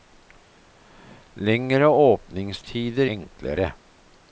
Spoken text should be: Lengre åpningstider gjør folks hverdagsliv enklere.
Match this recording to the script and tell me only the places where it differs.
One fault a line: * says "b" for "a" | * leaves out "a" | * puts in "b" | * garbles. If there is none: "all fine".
* leaves out "gjør folks hverdagsliv"